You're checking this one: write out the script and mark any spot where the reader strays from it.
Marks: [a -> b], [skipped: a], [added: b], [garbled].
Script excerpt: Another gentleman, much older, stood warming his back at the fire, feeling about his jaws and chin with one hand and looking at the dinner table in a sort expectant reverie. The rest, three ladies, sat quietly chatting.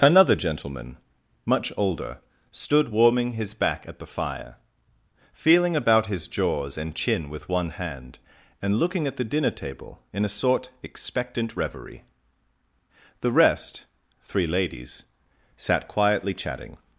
Another gentleman, much older, stood warming his back at the fire, feeling about his jaws and chin with one hand and looking at the dinner table in a sort expectant reverie. The rest, three ladies, sat quietly chatting.